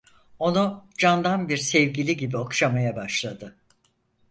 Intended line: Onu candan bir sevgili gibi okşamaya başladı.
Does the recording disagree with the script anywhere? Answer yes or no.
no